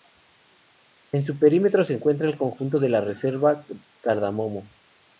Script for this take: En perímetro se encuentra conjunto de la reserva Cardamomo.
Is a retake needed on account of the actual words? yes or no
yes